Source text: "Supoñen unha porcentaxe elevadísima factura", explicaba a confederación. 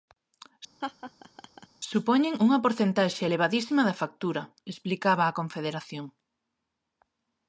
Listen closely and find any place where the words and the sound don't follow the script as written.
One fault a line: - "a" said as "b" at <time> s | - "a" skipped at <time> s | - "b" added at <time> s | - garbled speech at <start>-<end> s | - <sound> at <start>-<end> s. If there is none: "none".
- laugh at 0.8-1.7 s
- "da" added at 3.9 s